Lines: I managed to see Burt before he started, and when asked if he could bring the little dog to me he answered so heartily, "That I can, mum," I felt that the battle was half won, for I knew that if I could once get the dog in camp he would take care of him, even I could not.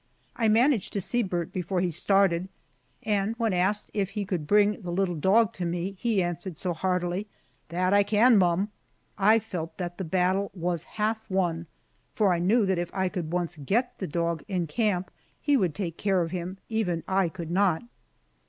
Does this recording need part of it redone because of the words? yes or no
no